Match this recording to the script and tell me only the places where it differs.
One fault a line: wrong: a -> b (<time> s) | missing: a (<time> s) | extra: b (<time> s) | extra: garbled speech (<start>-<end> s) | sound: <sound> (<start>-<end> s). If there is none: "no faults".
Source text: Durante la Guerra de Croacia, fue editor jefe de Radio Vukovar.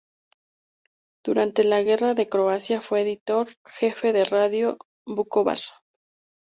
no faults